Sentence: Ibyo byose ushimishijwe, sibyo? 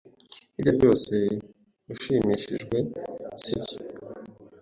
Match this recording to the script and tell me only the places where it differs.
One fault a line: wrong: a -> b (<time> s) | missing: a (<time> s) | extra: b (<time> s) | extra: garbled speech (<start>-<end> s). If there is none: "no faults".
no faults